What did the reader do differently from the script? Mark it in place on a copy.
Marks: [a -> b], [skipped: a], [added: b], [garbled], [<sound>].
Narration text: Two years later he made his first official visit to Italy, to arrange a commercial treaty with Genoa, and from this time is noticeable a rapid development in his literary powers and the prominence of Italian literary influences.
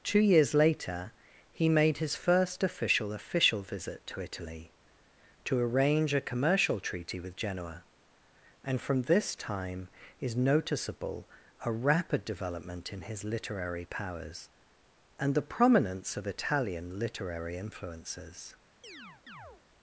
Two years later he made his first official [added: official] visit to Italy, to arrange a commercial treaty with Genoa, and from this time is noticeable a rapid development in his literary powers and the prominence of Italian literary influences. [chirp]